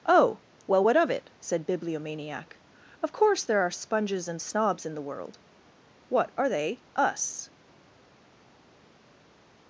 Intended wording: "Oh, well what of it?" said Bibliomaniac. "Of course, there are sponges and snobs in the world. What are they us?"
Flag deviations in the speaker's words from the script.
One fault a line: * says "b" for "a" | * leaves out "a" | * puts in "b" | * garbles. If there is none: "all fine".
all fine